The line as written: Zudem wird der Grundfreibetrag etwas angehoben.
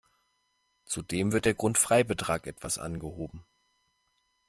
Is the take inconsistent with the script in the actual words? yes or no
no